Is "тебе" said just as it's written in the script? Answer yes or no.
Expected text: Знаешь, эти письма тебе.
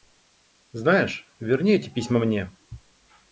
no